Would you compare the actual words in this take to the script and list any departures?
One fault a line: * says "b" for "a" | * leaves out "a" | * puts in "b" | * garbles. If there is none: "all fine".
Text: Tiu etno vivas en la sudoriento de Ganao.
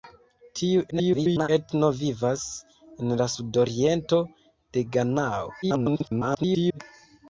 * garbles
* garbles